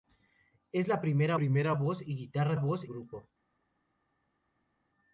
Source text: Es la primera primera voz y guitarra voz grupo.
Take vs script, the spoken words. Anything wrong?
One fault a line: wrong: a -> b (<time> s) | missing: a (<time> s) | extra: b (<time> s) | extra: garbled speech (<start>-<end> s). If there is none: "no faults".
no faults